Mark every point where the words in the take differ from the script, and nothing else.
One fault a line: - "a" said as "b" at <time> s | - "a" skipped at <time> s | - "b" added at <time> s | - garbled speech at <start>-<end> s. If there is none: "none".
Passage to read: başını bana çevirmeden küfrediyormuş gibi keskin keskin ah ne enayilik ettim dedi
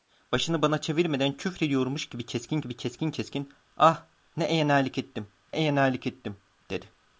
- "gibi" added at 2.6 s
- "keskin" added at 3.1 s
- "enayilik ettim" added at 5.5 s